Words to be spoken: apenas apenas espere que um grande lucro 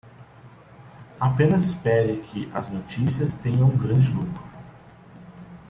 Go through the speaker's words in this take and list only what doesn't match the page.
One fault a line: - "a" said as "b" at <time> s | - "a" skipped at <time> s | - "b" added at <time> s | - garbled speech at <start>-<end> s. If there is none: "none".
- "apenas" skipped at 1.6 s
- "as notícias tenham" added at 2.5 s